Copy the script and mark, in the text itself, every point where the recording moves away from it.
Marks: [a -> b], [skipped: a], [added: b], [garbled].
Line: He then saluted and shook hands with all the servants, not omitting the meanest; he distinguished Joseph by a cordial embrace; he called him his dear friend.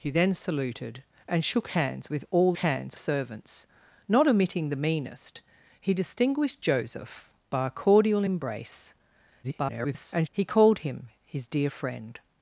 He then saluted and shook hands with all [the -> hands] servants, not omitting the meanest; he distinguished Joseph by a cordial embrace; [garbled] he called him his dear friend.